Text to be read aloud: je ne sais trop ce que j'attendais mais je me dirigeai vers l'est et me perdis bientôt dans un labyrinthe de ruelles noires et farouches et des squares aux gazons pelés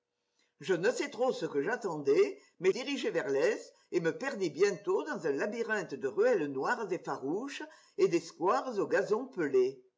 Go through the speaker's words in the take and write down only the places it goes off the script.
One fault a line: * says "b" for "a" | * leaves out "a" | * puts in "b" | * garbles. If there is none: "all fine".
* leaves out "je me"